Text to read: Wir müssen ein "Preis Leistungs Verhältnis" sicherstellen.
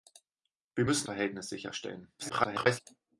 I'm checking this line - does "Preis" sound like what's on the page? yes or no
no